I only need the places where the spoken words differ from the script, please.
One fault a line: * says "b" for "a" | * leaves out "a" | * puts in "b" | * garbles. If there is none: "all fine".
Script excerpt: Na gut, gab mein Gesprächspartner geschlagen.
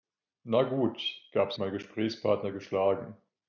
all fine